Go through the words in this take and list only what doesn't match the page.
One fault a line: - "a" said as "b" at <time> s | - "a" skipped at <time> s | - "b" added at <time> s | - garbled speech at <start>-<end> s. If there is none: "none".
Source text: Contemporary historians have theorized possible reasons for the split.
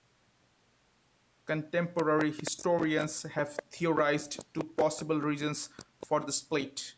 - "two" added at 4.5 s